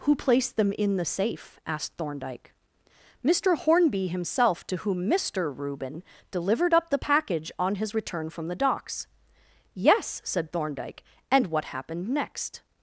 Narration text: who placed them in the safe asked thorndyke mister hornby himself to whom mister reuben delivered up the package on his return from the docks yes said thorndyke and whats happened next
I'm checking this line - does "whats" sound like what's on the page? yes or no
no